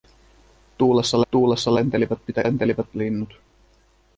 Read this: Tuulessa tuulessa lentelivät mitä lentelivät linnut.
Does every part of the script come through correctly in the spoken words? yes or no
yes